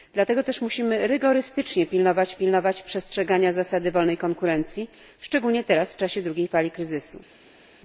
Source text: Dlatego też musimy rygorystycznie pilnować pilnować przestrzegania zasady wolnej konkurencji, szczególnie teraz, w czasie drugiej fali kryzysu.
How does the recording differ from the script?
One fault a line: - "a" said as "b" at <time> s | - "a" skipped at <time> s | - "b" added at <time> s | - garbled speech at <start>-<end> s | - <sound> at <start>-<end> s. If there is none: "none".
none